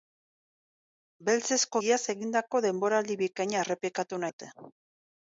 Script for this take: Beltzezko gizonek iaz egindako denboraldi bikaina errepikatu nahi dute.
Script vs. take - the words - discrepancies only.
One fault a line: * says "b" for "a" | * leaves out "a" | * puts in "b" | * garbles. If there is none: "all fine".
* leaves out "gizonek"
* leaves out "nahi"